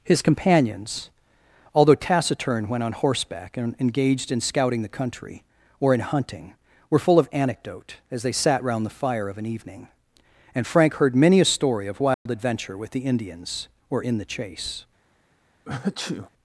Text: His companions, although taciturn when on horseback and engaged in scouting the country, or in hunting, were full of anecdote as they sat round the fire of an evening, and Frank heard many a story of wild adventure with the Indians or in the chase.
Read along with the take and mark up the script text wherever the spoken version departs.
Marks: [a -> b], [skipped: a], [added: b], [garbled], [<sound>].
His companions, although taciturn when on horseback and engaged in scouting the country, or in hunting, were full of anecdote as they sat round the fire of an evening, and Frank heard many a story of wild [dropout] adventure with the Indians or in the chase. [sneeze]